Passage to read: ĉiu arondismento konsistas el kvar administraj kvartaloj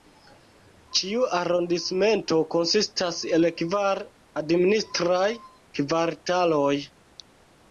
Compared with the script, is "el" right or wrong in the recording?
right